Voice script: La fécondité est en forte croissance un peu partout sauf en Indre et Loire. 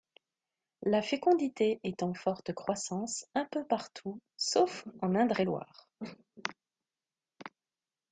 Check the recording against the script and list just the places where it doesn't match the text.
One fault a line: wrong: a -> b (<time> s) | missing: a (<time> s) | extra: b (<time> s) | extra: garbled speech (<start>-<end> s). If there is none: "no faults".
no faults